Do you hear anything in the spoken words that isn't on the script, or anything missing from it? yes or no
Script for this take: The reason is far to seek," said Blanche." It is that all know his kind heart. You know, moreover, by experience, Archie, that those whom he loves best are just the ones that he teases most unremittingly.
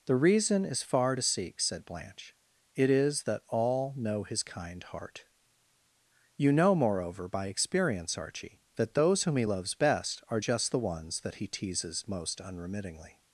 no